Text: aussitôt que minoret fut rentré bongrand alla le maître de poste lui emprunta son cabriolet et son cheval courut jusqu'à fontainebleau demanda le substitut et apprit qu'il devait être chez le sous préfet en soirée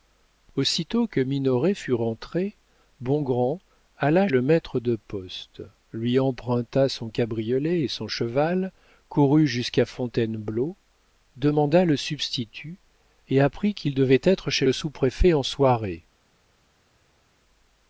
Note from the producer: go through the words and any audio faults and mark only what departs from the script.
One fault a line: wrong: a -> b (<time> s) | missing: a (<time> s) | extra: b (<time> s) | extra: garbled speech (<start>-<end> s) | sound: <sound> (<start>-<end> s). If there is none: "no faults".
no faults